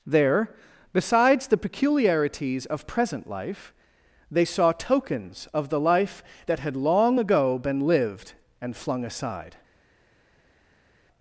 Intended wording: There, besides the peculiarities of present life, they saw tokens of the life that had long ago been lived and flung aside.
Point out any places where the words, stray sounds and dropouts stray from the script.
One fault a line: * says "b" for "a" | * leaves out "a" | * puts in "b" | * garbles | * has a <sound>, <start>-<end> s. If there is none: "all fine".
all fine